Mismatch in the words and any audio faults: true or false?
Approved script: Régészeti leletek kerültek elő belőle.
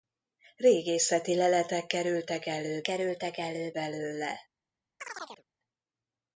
true